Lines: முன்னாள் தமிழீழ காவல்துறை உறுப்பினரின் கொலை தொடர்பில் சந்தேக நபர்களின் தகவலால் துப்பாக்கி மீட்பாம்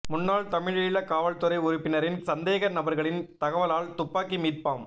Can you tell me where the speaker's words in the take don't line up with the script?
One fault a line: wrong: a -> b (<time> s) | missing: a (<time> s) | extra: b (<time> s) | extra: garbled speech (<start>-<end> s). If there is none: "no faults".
missing: கொலை தொடர்பில் (2.2 s)